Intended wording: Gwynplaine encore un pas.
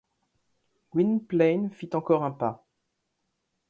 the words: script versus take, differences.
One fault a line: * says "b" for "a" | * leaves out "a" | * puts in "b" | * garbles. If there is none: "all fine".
* puts in "fit"